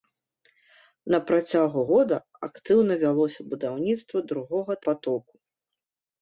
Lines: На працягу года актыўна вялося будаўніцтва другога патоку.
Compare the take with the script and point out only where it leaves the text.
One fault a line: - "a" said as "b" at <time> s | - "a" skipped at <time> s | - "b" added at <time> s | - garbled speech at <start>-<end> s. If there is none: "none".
none